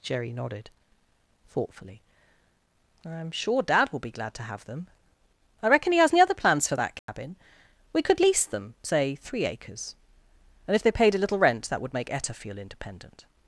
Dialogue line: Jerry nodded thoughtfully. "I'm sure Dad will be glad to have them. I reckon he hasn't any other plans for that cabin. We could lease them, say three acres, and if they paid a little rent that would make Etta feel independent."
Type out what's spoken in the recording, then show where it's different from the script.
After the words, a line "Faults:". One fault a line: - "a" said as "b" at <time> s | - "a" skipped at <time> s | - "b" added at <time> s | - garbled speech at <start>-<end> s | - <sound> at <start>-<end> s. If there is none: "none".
Jerry nodded thoughtfully. "I'm sure Dad will be glad to have them. I reckon he has any other plans for that cabin. We could lease them, say three acres, and if they paid a little rent that would make Etta feel independent."
Faults:
- "hasn't" said as "has" at 6.0 s
- dropout at 7.0-7.1 s